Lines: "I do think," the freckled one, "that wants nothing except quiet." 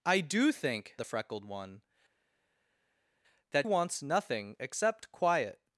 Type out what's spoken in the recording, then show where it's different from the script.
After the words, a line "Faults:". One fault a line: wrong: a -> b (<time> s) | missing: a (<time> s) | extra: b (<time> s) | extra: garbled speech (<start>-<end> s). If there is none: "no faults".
"I do think," the freckled one, "that wants nothing except quiet."
Faults:
no faults